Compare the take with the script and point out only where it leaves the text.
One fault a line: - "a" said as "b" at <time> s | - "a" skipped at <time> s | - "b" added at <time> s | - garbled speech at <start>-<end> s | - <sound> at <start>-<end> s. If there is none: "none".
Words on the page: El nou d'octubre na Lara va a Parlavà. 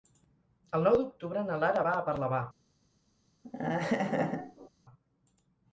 - laugh at 3.4-4.7 s